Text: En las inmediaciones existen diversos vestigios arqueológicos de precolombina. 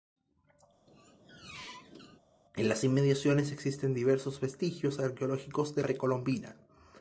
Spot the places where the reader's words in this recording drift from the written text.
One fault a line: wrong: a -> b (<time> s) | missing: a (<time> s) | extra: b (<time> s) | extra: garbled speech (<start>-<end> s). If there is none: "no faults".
no faults